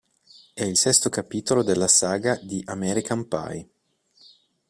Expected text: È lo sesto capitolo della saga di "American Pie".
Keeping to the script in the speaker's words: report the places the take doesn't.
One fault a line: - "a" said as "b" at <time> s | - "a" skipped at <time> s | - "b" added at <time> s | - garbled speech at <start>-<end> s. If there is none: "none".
- "lo" said as "il" at 0.6 s